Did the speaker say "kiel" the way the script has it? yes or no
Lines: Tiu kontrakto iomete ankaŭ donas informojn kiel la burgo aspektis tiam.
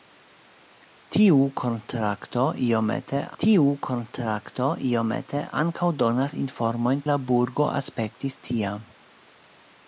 no